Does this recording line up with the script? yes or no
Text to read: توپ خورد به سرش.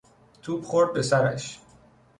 yes